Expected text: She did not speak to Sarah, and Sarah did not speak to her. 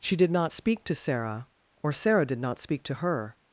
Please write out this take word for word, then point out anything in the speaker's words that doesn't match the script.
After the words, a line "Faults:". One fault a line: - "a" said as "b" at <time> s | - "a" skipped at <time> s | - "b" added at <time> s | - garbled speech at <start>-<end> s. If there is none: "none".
She did not speak to Sarah, or Sarah did not speak to her.
Faults:
- "and" said as "or" at 1.8 s